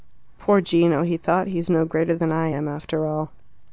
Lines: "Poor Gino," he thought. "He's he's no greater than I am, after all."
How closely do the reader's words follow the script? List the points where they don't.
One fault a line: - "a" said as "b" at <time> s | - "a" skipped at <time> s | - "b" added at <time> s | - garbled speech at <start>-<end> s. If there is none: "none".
- "he's" skipped at 1.7 s